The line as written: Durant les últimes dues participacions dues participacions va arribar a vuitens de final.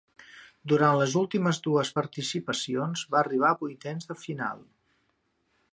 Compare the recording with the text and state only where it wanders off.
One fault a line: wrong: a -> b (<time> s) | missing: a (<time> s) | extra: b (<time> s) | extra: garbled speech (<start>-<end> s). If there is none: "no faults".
missing: dues participacions (3.1 s)